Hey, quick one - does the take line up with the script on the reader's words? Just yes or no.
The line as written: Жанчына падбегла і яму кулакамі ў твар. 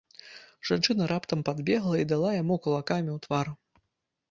no